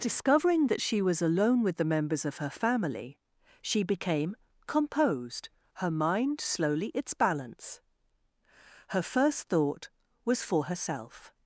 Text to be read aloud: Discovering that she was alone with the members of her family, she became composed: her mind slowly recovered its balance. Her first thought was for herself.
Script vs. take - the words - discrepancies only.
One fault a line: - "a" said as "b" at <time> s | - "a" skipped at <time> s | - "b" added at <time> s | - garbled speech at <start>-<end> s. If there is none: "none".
- "recovered" skipped at 6.9 s